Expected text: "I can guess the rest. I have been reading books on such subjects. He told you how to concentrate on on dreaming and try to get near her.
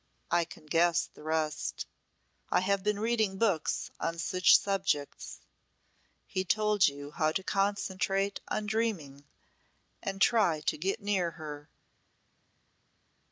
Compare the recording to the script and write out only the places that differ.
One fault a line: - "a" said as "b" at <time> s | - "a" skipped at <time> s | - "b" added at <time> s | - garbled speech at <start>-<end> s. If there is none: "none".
- "on" skipped at 8.7 s